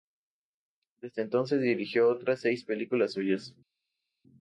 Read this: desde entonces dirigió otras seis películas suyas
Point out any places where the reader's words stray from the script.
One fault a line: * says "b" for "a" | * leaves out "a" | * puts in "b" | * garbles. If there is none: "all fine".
all fine